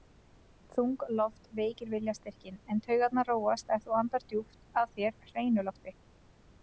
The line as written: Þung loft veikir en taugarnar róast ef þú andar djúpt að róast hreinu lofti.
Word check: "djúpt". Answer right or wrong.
right